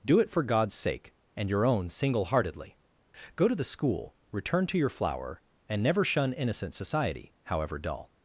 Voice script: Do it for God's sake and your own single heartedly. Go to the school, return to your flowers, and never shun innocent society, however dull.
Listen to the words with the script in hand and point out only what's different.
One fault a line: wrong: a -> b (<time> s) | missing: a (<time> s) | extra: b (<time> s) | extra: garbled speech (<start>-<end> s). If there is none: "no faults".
wrong: flowers -> flower (4.9 s)